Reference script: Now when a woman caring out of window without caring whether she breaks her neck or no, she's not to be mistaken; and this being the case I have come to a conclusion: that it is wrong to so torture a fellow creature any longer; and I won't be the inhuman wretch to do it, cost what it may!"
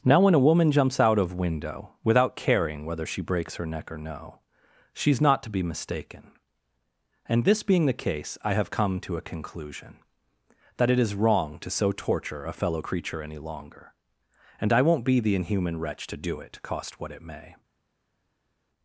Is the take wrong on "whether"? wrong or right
right